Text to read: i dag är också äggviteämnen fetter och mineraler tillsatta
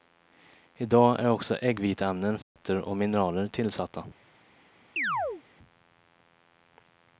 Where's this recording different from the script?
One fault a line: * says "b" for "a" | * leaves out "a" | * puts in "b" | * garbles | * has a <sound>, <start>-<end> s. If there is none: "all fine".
* has a dropout, 2.4-2.6 s
* has a chirp, 5.0-5.4 s